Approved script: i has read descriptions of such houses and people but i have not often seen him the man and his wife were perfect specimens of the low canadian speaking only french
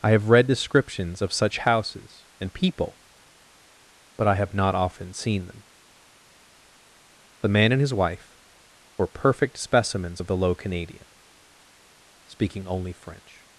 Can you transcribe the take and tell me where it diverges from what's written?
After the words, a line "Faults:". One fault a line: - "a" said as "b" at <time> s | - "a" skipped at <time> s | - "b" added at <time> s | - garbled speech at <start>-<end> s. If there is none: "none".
i have read descriptions of such houses and people but i have not often seen them the man and his wife were perfect specimens of the low canadian speaking only french
Faults:
- "has" said as "have" at 0.1 s
- "him" said as "them" at 5.5 s